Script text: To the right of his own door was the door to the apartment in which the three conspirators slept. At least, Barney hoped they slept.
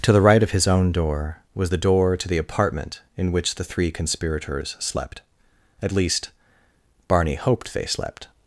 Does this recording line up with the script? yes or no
yes